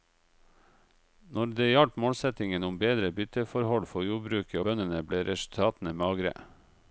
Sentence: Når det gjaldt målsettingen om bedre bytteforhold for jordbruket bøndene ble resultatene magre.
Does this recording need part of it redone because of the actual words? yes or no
no